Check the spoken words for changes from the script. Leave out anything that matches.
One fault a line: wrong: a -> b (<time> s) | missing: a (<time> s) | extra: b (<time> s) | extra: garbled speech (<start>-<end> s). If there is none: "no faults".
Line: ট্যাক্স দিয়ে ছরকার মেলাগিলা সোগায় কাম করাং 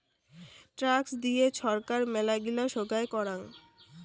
missing: কাম (3.1 s)